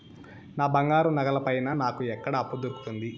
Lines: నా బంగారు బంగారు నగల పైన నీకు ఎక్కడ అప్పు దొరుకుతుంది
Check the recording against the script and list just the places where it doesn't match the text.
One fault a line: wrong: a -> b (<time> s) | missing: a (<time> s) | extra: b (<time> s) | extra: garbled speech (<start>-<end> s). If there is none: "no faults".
missing: బంగారు (1.1 s)
wrong: నీకు -> నాకు (1.8 s)